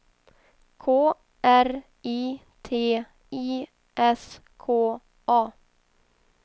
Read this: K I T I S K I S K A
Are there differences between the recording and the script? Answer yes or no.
yes